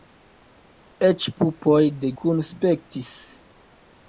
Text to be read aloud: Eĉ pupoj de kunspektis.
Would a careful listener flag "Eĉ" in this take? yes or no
no